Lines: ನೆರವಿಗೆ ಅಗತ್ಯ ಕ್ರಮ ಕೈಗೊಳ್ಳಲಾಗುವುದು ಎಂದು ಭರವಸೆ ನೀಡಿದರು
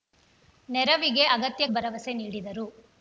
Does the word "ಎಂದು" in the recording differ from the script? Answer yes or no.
yes